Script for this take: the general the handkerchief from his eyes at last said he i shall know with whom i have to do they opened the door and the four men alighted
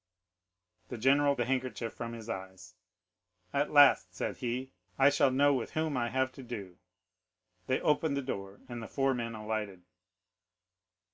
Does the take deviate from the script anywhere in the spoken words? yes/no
no